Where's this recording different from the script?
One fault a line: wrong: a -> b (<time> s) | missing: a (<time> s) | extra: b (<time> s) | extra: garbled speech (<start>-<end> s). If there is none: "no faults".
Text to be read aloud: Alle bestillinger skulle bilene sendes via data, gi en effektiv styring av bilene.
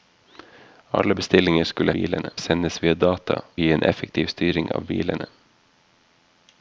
no faults